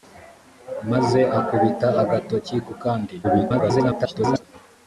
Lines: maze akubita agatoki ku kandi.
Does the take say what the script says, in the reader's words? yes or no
no